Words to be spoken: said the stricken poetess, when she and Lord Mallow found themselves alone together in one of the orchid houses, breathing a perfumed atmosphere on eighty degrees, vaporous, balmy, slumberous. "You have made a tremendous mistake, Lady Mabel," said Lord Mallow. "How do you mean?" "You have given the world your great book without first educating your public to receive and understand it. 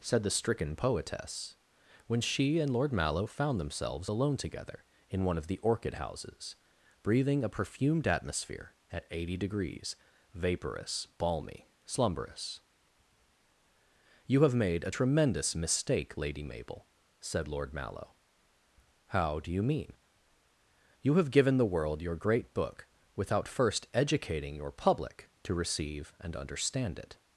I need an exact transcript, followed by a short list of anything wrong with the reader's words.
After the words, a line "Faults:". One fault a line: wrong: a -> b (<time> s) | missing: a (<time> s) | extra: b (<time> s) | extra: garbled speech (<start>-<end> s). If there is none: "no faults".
said the stricken poetess, when she and Lord Mallow found themselves alone together in one of the orchid houses, breathing a perfumed atmosphere at eighty degrees, vaporous, balmy, slumberous. "You have made a tremendous mistake, Lady Mabel," said Lord Mallow. "How do you mean?" "You have given the world your great book without first educating your public to receive and understand it.
Faults:
wrong: on -> at (8.9 s)